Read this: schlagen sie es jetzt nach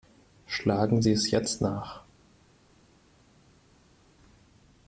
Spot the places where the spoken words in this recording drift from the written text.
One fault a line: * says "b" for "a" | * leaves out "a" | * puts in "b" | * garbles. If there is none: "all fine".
all fine